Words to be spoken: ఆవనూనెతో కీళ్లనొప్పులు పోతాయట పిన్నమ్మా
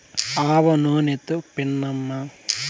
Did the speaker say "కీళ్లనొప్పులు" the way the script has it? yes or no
no